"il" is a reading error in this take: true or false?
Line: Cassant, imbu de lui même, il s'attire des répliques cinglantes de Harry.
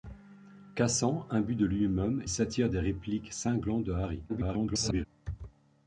true